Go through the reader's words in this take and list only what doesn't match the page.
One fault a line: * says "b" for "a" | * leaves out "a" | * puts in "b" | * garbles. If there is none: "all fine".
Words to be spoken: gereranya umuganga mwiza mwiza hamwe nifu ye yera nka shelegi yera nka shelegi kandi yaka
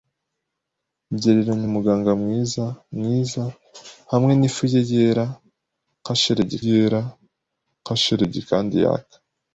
all fine